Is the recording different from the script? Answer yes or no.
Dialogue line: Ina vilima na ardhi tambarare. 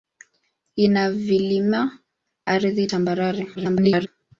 yes